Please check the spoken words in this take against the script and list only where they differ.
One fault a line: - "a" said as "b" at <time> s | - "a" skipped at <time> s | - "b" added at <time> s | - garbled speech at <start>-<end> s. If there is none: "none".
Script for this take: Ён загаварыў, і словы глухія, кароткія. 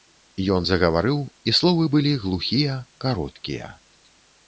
- "былі" added at 2.0 s